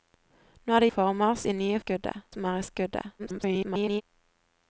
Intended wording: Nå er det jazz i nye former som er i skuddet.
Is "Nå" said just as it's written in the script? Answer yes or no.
yes